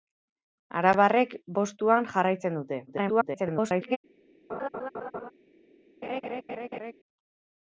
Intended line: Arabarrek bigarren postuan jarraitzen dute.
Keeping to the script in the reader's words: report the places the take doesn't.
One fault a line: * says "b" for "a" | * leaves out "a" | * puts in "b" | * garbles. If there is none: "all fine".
* leaves out "bigarren"
* garbles